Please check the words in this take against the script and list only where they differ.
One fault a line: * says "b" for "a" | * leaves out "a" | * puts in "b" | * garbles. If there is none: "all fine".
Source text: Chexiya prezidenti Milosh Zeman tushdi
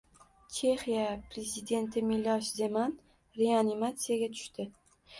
* puts in "reanimatsiyaga"